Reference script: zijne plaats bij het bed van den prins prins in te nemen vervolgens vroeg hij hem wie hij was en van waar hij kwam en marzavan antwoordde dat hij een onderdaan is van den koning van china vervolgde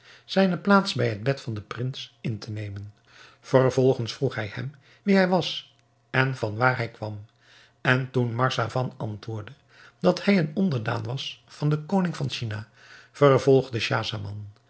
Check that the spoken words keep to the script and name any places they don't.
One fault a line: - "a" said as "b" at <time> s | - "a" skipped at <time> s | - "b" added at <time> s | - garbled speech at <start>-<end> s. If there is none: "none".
- "prins" skipped at 2.2 s
- "toen" added at 8.1 s
- "is" said as "was" at 11.0 s